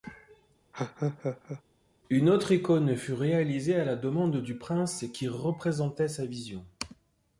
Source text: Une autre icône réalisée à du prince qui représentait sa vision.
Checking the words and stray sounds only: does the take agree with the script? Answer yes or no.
no